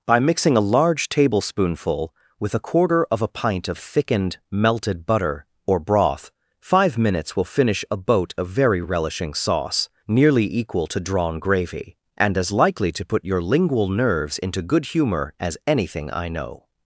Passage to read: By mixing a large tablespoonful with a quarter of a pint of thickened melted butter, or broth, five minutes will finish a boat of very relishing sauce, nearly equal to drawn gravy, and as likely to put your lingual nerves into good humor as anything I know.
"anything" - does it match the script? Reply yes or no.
yes